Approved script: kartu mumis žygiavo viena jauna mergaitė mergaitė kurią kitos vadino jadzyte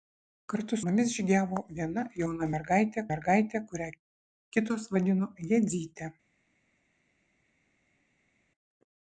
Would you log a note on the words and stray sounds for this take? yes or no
no